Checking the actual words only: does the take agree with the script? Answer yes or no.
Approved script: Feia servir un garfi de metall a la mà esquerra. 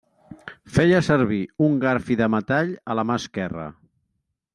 yes